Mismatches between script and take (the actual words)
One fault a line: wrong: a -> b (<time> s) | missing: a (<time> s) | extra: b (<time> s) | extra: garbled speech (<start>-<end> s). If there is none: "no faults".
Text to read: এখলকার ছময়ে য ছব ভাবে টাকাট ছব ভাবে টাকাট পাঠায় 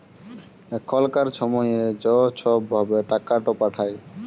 missing: ছব ভাবে টাকাট (3.4 s)